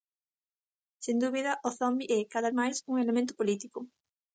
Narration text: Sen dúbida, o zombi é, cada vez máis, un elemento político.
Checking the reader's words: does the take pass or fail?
fail